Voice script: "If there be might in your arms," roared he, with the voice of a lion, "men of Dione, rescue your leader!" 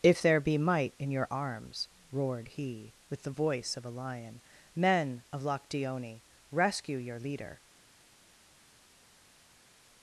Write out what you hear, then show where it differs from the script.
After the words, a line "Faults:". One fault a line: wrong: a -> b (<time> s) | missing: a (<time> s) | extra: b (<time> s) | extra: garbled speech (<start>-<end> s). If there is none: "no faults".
"If there be might in your arms," roared he, with the voice of a lion, "men of Loch Dione, rescue your leader!"
Faults:
extra: Loch (5.4 s)